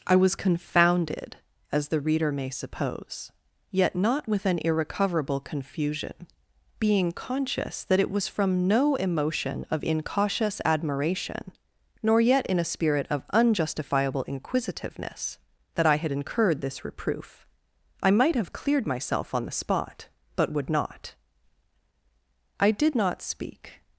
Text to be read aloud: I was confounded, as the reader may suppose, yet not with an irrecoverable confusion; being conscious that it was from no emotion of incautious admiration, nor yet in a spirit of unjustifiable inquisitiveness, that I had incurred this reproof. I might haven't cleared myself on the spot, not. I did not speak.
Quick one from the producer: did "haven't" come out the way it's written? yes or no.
no